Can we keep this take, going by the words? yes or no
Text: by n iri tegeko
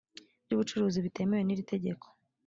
no